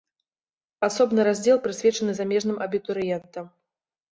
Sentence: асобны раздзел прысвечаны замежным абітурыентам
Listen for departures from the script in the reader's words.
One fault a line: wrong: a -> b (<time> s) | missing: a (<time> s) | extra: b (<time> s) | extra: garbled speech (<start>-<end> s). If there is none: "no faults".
no faults